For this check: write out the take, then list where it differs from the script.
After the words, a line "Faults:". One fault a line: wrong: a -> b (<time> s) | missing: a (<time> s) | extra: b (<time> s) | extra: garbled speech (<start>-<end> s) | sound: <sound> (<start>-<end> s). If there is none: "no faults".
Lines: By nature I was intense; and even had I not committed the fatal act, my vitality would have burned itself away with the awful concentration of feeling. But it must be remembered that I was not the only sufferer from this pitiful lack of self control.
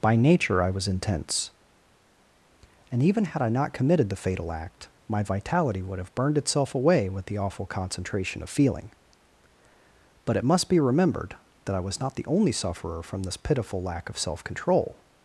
By nature I was intense; and even had I not committed the fatal act, my vitality would have burned itself away with the awful concentration of feeling. But it must be remembered that I was not the only sufferer from this pitiful lack of self control.
Faults:
no faults